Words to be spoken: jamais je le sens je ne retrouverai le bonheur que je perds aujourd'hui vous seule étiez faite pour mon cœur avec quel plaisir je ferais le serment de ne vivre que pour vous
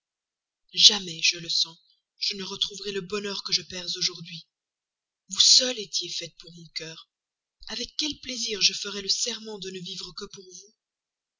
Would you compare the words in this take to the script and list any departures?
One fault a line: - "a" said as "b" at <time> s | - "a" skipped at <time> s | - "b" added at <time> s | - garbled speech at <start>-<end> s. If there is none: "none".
none